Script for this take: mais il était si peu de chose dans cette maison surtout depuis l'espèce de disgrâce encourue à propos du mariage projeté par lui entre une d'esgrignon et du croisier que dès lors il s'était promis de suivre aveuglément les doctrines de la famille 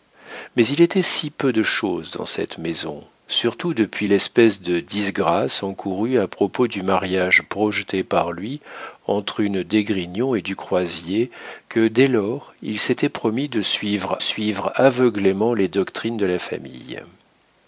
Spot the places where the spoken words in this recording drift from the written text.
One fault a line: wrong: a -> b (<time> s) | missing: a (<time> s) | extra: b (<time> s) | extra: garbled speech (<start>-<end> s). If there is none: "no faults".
extra: suivre (14.2 s)